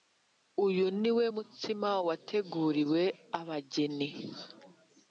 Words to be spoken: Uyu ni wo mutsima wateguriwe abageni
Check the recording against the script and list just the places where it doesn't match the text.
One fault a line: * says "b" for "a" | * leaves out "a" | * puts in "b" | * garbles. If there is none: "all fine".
all fine